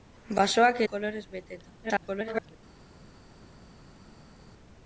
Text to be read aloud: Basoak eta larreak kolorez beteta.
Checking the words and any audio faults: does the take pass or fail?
fail